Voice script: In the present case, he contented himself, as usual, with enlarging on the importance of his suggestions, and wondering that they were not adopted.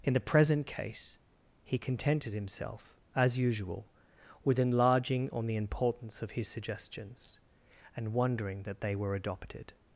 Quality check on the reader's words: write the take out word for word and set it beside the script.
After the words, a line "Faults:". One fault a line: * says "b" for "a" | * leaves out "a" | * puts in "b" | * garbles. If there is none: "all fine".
In the present case, he contented himself, as usual, with enlarging on the importance of his suggestions, and wondering that they were adopted.
Faults:
* leaves out "not"